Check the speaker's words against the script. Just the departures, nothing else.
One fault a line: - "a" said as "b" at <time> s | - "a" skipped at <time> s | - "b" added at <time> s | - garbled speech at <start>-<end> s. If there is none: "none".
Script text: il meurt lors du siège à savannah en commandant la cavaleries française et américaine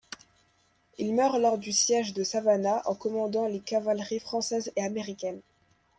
- "à" said as "de" at 2.1 s
- "la" said as "les" at 3.5 s